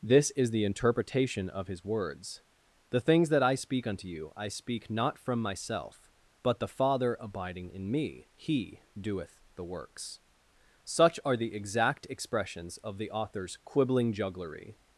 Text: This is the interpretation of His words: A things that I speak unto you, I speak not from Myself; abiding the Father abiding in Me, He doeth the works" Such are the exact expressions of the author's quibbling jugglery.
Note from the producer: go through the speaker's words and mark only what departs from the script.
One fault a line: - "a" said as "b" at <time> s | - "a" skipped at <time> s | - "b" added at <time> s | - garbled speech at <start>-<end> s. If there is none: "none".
- "A" said as "The" at 2.9 s
- "abiding" said as "but" at 6.4 s